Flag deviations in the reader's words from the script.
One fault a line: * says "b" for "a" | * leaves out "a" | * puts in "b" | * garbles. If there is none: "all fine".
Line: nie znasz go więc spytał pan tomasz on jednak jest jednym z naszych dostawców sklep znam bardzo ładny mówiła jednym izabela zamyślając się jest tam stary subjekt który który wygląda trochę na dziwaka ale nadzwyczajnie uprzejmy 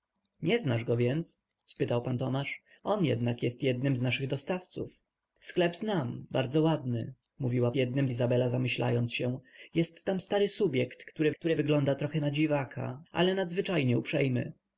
all fine